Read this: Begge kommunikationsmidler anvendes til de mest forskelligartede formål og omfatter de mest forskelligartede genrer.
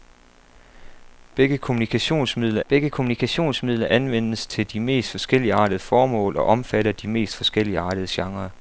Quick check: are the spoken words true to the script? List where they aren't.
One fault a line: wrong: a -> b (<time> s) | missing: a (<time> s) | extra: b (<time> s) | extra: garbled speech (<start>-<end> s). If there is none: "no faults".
extra: begge kommunikationsmidler (2.7 s)